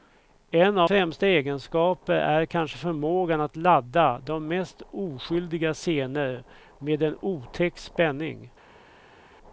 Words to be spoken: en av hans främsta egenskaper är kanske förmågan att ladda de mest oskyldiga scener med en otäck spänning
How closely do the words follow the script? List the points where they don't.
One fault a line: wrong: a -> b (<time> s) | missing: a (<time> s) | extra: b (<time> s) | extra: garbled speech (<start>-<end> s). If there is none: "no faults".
missing: hans (0.9 s)